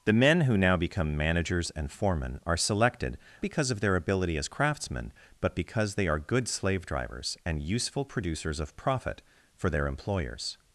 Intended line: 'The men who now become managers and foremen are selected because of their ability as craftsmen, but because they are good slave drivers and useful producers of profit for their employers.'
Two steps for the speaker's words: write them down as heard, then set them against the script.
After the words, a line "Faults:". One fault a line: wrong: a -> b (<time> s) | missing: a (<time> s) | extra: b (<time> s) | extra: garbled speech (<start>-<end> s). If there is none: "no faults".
'The men who now become managers and foremen are selected because of their ability as craftsmen, but because they are good slave drivers and useful producers of profit for their employers.'
Faults:
no faults